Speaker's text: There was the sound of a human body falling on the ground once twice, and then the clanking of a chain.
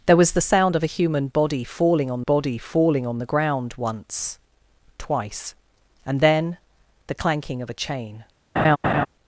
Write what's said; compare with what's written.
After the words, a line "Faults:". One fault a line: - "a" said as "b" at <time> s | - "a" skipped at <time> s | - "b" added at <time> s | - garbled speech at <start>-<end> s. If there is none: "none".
There was the sound of a human body falling on body falling on the ground once twice, and then the clanking of a chain.
Faults:
- "body falling on" added at 2.2 s